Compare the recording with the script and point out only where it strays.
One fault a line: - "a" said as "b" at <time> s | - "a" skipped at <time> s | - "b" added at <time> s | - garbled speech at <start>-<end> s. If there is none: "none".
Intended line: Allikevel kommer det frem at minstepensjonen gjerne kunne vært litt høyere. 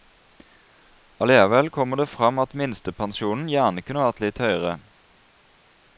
none